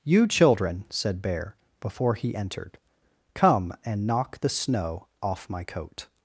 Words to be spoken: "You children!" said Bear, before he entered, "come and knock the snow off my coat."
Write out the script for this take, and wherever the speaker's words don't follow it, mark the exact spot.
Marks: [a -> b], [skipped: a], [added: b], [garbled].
"You children!" said Bear, before he entered, "come and knock the snow off my coat."